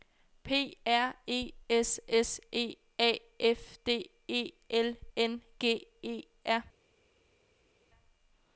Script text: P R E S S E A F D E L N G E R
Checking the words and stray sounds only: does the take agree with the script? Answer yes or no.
yes